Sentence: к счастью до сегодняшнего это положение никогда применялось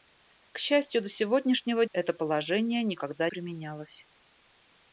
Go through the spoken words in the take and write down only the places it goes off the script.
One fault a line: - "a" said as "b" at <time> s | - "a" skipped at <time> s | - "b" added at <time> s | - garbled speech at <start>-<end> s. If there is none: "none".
none